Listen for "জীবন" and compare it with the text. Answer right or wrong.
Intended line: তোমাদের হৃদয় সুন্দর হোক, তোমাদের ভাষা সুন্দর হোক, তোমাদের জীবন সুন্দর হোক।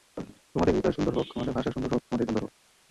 wrong